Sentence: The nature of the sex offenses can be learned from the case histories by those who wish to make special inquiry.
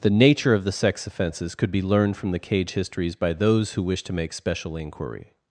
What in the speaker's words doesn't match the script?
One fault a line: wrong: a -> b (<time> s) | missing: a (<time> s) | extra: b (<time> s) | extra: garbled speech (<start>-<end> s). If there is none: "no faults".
wrong: can -> could (1.5 s)
wrong: case -> cage (2.4 s)